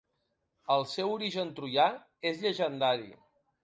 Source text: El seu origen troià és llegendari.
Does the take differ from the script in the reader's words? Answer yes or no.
no